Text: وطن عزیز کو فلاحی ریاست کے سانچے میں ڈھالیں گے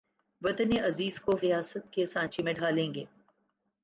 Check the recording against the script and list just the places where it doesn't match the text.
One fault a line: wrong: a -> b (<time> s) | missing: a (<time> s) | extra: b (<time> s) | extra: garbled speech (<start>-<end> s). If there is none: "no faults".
missing: فلاحی (1.4 s)